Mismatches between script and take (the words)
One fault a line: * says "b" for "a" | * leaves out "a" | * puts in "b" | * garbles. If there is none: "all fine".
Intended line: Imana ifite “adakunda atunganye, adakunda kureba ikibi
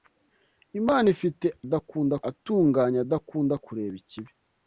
all fine